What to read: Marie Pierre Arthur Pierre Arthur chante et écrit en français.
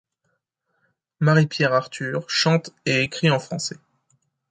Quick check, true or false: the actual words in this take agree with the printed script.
false